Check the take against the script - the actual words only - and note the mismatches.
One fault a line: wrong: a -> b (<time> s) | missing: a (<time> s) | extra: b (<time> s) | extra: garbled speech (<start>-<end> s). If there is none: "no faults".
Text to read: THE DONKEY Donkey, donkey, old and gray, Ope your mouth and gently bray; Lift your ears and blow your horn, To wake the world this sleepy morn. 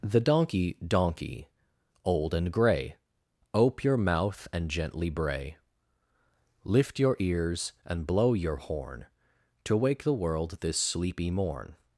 missing: donkey (1.5 s)